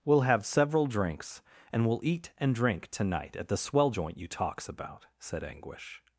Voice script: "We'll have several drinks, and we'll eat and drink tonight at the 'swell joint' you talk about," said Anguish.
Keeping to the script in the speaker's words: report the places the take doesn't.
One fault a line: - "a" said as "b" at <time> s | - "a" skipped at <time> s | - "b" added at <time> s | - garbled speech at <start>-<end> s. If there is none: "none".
- "talk" said as "talks" at 4.3 s